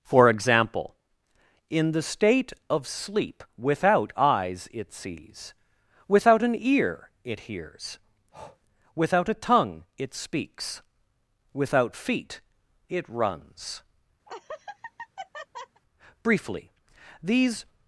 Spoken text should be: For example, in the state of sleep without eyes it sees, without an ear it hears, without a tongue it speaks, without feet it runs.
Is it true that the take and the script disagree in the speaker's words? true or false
true